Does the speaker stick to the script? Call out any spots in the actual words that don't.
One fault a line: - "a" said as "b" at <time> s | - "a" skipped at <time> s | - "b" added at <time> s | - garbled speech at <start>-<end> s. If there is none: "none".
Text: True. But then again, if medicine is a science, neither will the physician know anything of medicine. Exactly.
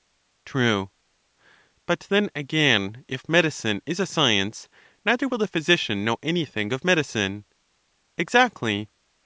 none